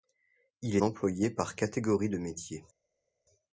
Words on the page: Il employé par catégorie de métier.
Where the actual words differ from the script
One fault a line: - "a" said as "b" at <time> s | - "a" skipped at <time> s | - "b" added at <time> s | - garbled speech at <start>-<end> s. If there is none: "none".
none